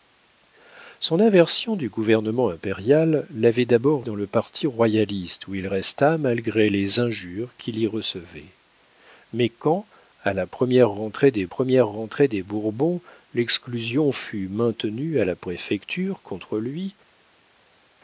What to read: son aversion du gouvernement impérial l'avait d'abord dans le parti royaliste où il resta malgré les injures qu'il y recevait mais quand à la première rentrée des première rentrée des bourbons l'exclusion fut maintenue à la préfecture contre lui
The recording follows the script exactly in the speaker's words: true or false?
true